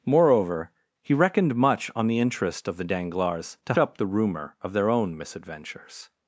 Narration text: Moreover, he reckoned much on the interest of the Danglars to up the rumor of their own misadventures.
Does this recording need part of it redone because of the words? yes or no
no